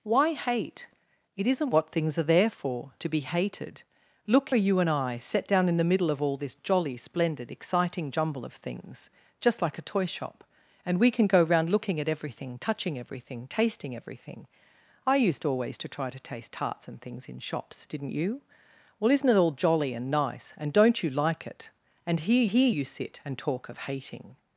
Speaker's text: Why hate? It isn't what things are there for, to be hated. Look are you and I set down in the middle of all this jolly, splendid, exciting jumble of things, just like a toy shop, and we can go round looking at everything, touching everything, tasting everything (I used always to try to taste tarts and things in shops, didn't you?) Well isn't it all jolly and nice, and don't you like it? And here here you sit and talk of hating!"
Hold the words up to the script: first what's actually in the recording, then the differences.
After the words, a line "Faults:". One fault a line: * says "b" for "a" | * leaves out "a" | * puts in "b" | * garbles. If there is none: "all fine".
Why hate? It isn't what things are there for, to be hated. Look are you and I set down in the middle of all this jolly, splendid, exciting jumble of things, just like a toy shop, and we can go round looking at everything, touching everything, tasting everything (I used always to try to taste tarts and things in shops, didn't you?) Well isn't it all jolly and nice, and don't you like it? And here here you sit and talk of hating!"
Faults:
all fine